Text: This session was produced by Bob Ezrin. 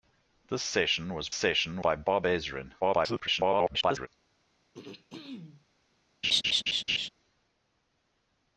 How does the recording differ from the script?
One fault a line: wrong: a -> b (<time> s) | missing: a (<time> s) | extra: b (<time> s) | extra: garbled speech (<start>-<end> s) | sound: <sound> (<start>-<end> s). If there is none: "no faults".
wrong: produced -> session (1.3 s)
extra: garbled speech (2.8-4.1 s)
sound: throat clearing (4.7-5.7 s)
sound: laugh (6.2-7.1 s)